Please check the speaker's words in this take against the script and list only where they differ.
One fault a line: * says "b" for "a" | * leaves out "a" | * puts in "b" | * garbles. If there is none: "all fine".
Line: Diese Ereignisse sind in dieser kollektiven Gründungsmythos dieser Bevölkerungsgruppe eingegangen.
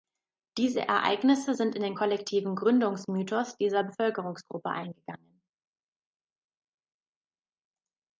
* says "den" for "dieser"